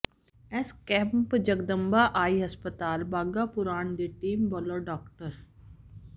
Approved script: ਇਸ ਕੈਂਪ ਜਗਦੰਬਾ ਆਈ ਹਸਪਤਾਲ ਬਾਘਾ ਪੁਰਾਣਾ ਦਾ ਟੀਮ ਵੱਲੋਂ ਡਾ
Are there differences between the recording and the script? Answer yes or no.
yes